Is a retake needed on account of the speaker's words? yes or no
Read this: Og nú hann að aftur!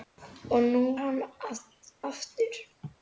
no